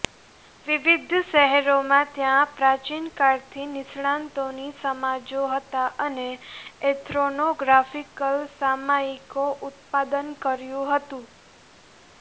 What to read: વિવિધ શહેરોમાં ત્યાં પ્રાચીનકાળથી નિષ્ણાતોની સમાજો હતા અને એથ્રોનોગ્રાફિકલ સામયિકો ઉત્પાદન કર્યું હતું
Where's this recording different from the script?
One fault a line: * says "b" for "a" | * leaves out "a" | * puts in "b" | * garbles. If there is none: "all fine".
all fine